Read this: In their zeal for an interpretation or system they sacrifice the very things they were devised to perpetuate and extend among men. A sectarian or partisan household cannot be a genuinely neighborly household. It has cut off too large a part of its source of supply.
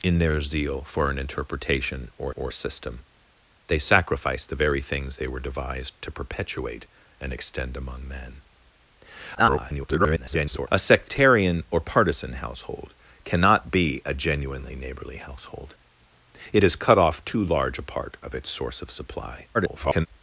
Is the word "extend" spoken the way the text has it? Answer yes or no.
yes